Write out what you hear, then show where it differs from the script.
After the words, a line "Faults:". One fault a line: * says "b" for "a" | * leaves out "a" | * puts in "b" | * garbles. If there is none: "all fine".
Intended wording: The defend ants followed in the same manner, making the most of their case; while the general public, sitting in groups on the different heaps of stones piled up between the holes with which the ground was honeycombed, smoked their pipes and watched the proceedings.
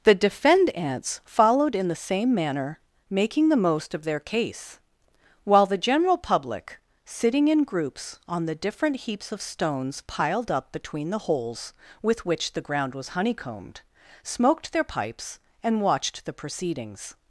The defend ants followed in the same manner, making the most of their case; while the general public, sitting in groups on the different heaps of stones piled up between the holes with which the ground was honeycombed, smoked their pipes and watched the proceedings.
Faults:
all fine